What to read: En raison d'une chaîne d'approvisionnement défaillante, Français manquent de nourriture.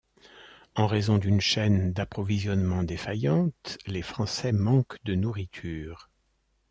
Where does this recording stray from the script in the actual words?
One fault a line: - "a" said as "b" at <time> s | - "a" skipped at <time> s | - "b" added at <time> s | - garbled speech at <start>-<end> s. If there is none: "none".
- "les" added at 3.9 s